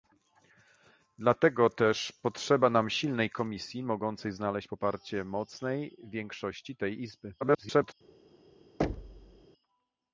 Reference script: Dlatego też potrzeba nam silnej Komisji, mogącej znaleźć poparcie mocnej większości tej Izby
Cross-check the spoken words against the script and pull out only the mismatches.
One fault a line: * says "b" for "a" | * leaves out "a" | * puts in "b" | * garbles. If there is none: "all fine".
* garbles